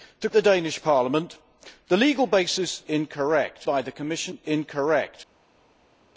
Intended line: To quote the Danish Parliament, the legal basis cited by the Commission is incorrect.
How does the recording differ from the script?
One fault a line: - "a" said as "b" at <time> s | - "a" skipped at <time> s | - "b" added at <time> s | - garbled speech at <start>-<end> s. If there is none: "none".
- "quote" skipped at 0.3 s
- "cited" said as "incorrect" at 2.9 s
- "is" skipped at 4.4 s